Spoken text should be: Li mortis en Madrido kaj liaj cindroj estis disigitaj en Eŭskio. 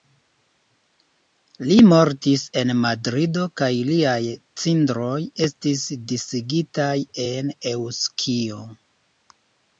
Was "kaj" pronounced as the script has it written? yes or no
yes